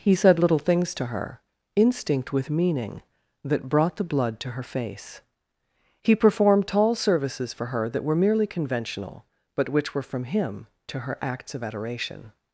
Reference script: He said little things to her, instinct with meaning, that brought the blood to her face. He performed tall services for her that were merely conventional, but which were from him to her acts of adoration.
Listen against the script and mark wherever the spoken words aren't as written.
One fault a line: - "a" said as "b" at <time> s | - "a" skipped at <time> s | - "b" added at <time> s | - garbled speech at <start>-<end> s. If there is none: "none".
none